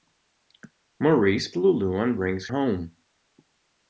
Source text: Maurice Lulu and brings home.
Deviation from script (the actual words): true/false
false